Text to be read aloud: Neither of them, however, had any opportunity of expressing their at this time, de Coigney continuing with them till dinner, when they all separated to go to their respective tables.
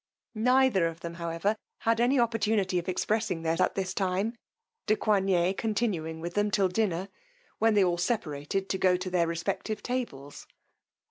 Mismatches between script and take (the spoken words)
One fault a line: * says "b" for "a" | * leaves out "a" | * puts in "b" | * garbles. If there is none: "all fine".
all fine